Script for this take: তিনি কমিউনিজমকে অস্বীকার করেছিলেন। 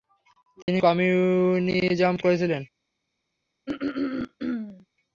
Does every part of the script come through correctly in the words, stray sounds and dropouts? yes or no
no